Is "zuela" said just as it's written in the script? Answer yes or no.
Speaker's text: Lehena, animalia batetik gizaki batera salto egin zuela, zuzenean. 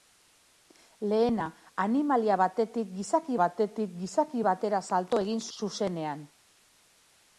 no